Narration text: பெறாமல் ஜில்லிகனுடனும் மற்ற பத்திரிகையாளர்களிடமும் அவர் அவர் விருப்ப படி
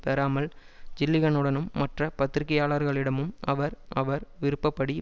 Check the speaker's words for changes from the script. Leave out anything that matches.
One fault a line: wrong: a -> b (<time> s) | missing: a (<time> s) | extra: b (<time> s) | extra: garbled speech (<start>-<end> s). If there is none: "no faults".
no faults